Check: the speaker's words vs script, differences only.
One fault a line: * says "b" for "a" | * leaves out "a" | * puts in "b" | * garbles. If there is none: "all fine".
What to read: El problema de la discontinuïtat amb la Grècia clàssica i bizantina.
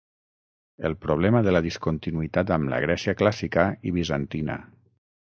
all fine